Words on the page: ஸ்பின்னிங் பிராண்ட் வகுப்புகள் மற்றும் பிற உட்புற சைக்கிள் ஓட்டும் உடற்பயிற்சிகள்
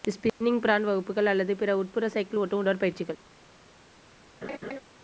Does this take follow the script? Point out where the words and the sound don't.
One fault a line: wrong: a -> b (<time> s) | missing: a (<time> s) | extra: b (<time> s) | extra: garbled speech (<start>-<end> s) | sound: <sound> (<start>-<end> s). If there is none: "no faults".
wrong: மற்றும் -> அல்லது (1.3 s)
sound: laugh (4.4-4.8 s)